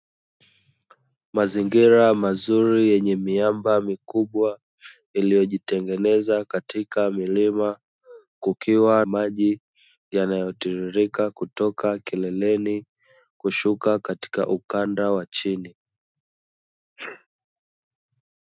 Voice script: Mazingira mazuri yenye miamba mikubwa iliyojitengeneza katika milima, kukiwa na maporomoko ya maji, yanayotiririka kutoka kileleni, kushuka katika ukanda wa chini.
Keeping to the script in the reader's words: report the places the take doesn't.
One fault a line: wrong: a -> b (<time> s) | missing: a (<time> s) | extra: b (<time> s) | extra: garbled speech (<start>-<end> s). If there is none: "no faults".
missing: na maporomoko ya (9.1 s)